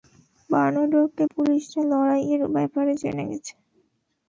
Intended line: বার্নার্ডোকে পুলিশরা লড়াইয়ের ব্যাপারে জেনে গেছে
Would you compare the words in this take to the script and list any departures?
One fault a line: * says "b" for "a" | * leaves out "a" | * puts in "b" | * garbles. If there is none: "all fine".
all fine